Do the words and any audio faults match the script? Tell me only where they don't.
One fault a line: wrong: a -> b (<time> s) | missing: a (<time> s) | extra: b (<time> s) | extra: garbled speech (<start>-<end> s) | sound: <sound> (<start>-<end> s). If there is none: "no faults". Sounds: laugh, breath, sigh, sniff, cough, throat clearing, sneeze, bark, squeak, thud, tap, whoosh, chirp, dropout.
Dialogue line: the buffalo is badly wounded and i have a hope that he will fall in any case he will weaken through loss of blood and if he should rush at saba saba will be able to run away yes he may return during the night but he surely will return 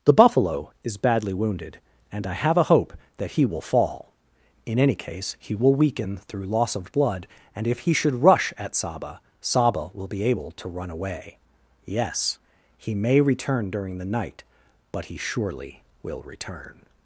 no faults